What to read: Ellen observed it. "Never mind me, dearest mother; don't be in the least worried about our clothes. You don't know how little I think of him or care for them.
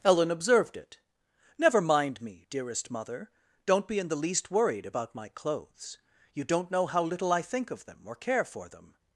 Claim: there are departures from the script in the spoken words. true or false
true